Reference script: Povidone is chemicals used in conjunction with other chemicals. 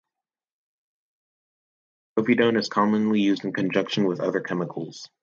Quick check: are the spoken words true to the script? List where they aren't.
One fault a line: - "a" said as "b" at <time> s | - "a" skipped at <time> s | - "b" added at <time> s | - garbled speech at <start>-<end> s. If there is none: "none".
- "chemicals" said as "commonly" at 2.7 s